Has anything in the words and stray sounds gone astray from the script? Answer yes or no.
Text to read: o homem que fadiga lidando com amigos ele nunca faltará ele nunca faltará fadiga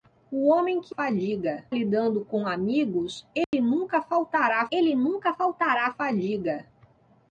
yes